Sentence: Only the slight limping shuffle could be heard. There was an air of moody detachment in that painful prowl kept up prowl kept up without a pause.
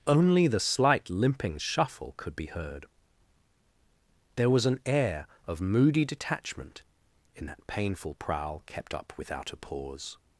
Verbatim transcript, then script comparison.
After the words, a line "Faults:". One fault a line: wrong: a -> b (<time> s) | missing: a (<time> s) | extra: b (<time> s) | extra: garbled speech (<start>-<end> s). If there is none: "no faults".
Only the slight limping shuffle could be heard. There was an air of moody detachment in that painful prowl kept up without a pause.
Faults:
missing: prowl kept up (9.1 s)